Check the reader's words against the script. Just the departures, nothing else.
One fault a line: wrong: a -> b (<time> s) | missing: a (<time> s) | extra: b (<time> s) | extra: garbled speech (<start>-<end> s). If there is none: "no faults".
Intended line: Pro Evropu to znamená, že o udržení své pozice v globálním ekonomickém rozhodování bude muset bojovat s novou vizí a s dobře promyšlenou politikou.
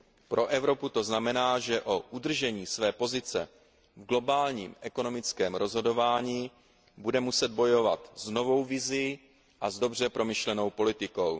no faults